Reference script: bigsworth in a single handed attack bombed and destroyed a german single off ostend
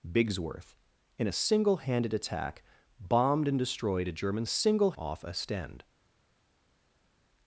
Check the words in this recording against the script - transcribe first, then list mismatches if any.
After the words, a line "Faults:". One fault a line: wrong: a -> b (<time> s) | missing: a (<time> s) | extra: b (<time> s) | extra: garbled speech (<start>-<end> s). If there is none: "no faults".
bigsworth in a single handed attack bombed and destroyed a german single off ostend
Faults:
no faults